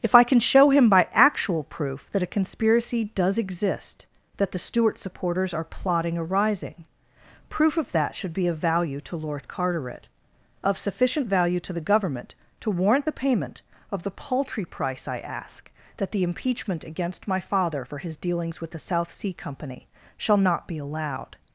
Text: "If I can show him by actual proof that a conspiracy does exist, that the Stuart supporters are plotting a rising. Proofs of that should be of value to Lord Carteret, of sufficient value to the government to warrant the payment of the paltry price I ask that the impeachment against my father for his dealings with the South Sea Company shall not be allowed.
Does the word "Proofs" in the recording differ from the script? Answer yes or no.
yes